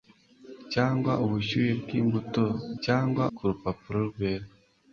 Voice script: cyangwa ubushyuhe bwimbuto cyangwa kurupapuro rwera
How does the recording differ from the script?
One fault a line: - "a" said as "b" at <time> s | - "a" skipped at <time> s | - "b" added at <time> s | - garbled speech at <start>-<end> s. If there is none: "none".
none